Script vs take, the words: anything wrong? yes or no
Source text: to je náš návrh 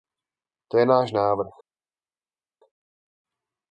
no